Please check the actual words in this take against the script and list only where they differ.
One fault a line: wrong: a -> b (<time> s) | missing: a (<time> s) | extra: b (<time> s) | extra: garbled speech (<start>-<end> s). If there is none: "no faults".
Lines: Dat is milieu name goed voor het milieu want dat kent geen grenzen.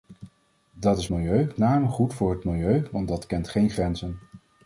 no faults